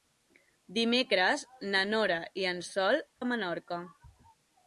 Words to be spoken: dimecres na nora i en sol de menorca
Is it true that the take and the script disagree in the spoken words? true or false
false